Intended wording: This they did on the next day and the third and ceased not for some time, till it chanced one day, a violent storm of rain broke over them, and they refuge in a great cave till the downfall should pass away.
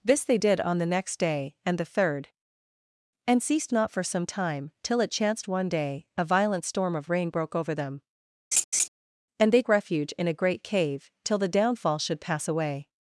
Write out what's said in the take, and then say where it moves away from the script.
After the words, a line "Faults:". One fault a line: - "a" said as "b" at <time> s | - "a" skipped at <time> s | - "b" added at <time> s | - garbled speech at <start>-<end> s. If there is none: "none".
This they did on the next day and the third and ceased not for some time, till it chanced one day, a violent storm of rain broke over them, and they refuge in a great cave till the downfall should pass away.
Faults:
none